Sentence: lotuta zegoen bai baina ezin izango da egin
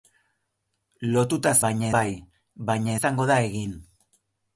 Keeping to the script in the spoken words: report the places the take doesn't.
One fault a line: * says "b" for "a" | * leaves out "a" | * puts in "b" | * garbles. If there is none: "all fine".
* says "baina" for "zegoen"
* leaves out "ezin"